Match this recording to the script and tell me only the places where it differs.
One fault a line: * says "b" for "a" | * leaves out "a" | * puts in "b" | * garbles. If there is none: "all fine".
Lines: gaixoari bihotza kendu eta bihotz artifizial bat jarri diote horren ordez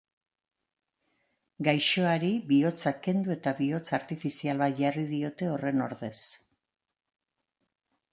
all fine